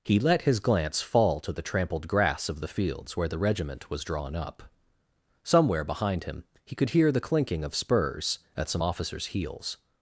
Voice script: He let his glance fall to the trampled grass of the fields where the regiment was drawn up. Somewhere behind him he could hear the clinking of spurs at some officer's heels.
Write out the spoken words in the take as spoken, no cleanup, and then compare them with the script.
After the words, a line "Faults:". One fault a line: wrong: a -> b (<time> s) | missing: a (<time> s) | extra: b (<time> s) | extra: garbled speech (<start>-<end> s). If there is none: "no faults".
He let his glance fall to the trampled grass of the fields where the regiment was drawn up. Somewhere behind him he could hear the clinking of spurs at some officer's heels.
Faults:
no faults